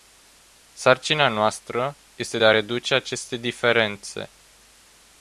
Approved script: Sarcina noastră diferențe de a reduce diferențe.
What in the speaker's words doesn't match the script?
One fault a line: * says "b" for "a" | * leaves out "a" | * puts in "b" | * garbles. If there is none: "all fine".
* says "este" for "diferențe"
* puts in "aceste"